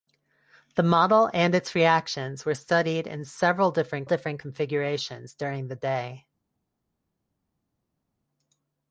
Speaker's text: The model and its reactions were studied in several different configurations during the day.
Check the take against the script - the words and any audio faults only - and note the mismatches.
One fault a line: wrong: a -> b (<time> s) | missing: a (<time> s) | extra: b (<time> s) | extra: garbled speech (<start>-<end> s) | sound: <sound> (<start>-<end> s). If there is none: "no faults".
extra: different (4.0 s)